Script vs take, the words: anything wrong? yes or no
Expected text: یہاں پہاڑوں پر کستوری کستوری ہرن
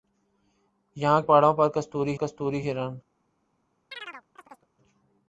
no